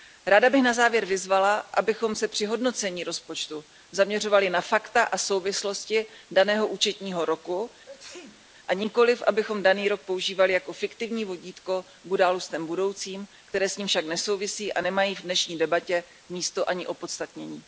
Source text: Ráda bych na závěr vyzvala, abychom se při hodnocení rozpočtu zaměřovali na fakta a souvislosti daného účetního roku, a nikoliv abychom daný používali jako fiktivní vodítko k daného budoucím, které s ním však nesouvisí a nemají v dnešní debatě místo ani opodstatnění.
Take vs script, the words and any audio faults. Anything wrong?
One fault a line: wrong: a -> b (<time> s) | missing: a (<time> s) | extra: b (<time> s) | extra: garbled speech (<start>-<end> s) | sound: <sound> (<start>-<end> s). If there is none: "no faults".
sound: sneeze (7.9-8.5 s)
extra: rok (9.9 s)
wrong: daného -> událostem (12.1 s)